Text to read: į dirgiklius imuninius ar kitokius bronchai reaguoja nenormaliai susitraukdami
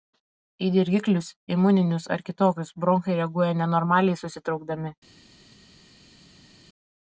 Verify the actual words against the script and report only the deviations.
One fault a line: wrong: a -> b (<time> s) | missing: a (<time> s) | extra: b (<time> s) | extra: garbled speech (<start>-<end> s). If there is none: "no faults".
no faults